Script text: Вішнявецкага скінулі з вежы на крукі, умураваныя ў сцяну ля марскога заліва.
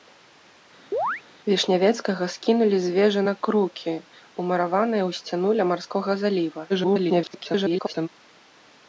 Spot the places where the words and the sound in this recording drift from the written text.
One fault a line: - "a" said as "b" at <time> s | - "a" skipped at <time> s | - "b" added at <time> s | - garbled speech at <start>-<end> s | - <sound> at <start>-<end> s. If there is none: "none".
- chirp at 0.9-1.2 s
- garbled speech at 6.7-8.1 s